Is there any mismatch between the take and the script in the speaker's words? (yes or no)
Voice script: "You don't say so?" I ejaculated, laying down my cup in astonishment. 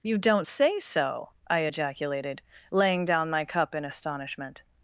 no